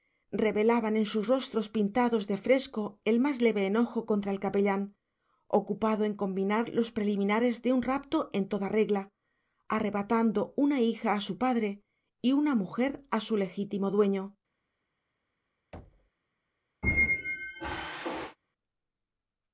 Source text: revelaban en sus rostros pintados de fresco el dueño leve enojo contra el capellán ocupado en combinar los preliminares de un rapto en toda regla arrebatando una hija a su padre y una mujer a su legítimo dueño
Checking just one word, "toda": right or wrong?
right